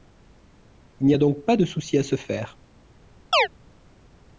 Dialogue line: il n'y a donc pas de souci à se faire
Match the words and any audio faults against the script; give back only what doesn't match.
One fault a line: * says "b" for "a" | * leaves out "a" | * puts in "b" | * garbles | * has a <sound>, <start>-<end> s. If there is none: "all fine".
* has a chirp, 3.3-3.5 s